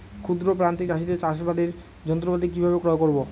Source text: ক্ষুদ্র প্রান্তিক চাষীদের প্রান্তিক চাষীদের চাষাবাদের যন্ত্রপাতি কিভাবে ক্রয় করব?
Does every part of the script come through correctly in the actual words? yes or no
no